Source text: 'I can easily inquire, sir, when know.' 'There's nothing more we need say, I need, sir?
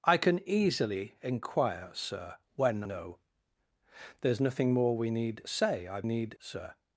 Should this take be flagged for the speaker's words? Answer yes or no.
no